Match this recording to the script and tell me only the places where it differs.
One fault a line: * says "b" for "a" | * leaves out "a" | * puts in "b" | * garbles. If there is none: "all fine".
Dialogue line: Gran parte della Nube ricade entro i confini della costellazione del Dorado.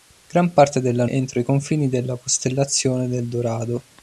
* leaves out "Nube ricade"